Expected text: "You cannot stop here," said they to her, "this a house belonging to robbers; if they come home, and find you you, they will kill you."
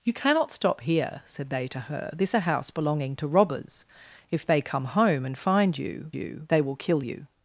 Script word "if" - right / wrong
right